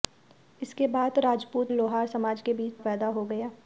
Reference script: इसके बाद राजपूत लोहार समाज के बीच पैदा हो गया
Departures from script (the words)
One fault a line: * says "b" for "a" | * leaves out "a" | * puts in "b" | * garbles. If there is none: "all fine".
all fine